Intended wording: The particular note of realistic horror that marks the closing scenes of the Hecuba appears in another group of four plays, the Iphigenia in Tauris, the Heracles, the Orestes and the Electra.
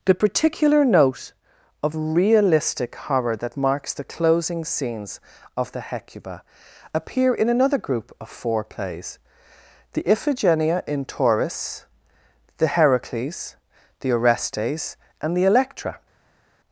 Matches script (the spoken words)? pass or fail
fail